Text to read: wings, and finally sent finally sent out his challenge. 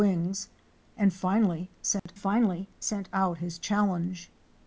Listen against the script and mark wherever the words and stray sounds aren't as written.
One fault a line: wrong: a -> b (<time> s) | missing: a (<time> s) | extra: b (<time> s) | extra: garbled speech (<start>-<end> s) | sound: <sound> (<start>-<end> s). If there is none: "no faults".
sound: dropout (2.0-2.1 s)